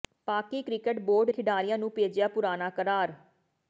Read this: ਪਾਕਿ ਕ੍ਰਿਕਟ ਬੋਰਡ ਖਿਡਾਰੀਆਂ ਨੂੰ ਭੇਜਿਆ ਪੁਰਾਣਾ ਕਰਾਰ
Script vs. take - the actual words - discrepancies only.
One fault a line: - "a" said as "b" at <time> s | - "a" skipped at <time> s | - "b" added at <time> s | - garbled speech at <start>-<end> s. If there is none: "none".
none